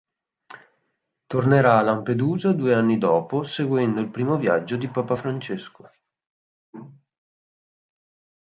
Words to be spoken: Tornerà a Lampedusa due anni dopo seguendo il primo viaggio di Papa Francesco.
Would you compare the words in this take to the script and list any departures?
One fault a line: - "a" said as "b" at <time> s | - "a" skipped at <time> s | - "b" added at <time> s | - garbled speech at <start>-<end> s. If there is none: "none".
none